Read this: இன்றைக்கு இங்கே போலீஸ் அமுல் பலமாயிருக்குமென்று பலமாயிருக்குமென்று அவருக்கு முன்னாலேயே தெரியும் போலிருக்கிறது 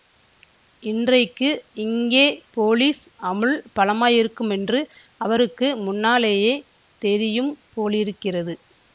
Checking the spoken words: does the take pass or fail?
fail